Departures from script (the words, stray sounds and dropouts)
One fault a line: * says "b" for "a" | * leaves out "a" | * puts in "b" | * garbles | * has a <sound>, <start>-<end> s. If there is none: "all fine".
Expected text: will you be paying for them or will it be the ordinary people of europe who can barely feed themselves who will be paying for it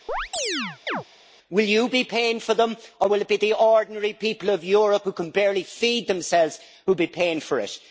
* has a chirp, 0.1-1.0 s